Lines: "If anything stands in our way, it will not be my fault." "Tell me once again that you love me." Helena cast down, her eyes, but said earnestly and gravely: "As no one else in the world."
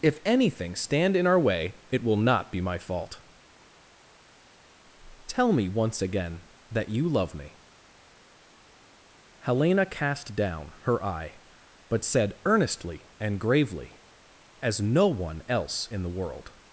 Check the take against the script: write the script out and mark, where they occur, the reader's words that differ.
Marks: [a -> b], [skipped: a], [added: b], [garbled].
"If anything [stands -> stand] in our way, it will not be my fault." "Tell me once again that you love me." Helena cast down, her [eyes, -> eye] but said earnestly and gravely: "As no one else in the world."